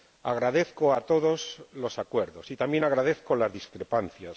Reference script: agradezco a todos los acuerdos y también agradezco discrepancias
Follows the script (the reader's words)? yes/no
no